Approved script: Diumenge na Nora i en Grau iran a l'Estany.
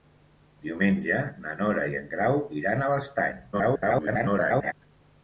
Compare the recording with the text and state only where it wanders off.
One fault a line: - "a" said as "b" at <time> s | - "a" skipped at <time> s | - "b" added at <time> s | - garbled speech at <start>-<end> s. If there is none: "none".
- garbled speech at 3.5-4.7 s